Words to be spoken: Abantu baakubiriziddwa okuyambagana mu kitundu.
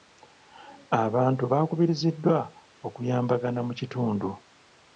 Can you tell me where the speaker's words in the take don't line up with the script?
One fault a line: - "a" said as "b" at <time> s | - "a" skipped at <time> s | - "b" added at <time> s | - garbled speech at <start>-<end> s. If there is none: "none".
none